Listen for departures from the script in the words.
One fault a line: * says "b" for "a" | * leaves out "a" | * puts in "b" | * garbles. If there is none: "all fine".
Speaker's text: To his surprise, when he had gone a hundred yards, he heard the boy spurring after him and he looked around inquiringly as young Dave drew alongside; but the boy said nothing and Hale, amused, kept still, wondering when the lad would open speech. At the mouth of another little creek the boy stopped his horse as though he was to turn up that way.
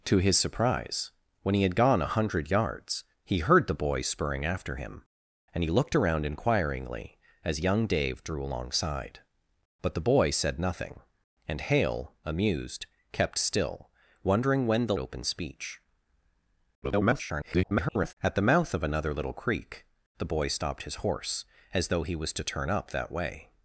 * leaves out "lad would"
* garbles